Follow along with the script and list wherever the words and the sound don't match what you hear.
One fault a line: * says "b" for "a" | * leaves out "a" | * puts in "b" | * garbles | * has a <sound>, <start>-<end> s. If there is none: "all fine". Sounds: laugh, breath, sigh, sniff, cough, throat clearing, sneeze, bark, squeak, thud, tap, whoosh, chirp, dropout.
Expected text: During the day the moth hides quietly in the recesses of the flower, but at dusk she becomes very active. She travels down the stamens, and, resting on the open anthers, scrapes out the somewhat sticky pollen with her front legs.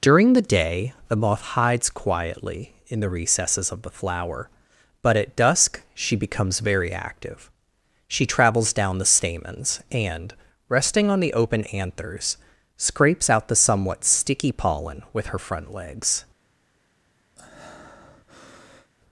* has a breath, 17.4-18.9 s